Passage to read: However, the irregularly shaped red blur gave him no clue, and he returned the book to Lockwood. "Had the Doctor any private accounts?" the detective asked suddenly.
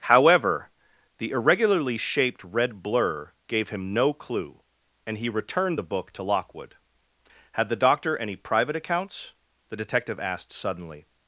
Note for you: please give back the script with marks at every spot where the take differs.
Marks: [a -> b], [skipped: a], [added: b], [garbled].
However, the irregularly shaped red blur gave him no clue, and he returned the book to Lockwood. "Had the Doctor any private accounts?" the detective asked suddenly.